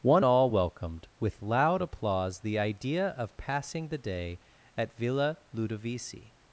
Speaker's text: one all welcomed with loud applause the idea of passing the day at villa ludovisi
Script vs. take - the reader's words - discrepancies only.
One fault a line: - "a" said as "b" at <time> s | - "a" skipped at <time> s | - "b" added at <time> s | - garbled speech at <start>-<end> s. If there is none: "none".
none